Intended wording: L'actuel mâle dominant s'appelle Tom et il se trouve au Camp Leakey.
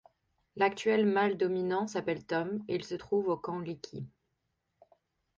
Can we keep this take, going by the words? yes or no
yes